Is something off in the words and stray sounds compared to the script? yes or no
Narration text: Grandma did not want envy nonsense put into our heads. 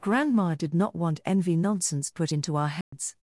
yes